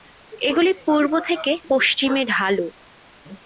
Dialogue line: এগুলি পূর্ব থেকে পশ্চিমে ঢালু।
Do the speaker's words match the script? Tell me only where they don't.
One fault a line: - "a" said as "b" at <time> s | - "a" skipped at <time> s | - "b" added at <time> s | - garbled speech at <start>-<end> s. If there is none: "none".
none